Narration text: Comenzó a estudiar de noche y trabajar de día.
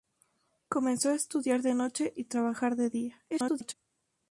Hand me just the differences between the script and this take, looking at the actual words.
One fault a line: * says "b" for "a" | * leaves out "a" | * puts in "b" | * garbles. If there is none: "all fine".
* garbles